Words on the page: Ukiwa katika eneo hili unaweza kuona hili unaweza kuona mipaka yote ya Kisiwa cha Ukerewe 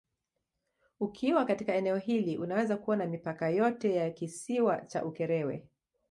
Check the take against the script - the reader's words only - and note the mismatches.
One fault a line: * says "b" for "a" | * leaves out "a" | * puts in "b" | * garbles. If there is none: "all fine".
* leaves out "hili unaweza kuona"